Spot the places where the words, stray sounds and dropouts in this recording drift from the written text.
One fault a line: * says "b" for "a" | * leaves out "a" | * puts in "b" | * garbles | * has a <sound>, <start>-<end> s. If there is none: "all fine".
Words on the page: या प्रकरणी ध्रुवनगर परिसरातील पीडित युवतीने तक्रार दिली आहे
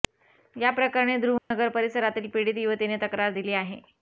* has a dropout, 1.4-1.5 s